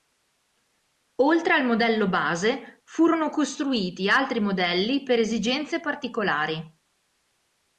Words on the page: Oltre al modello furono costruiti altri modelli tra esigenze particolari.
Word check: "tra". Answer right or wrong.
wrong